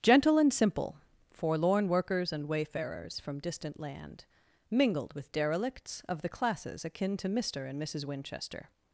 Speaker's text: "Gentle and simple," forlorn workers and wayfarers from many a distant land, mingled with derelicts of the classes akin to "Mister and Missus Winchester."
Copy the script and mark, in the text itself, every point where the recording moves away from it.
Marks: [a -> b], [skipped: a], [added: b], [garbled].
"Gentle and simple," forlorn workers and wayfarers from [skipped: many a] distant land, mingled with derelicts of the classes akin to "Mister and Missus Winchester."